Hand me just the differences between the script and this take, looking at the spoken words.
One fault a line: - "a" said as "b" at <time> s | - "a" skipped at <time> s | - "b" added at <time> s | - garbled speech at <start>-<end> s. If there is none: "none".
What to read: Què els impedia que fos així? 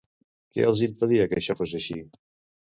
- "això" added at 1.4 s